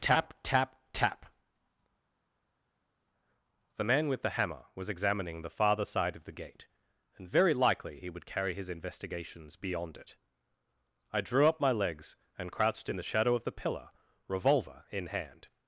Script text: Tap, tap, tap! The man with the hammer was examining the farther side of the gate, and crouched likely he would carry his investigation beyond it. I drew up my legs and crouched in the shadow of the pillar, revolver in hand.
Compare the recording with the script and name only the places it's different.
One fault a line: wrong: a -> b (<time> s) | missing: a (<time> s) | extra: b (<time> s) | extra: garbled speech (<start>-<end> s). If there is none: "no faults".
wrong: crouched -> very (7.3 s)
wrong: investigation -> investigations (8.7 s)